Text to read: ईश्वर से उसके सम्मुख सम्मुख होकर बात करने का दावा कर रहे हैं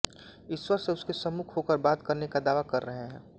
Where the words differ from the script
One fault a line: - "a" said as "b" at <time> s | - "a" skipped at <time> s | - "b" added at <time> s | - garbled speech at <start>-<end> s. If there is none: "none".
- "सम्मुख" skipped at 1.6 s